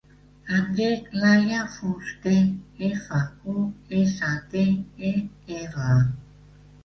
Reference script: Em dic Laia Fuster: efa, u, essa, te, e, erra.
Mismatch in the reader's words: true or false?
false